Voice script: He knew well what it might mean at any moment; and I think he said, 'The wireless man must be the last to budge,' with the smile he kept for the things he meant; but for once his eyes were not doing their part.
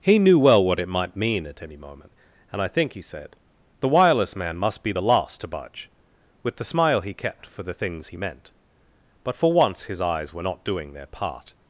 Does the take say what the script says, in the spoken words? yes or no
yes